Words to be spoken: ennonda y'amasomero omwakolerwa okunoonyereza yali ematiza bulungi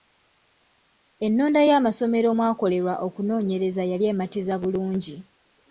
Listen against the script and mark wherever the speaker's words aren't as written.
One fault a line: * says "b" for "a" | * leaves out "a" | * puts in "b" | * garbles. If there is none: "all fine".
all fine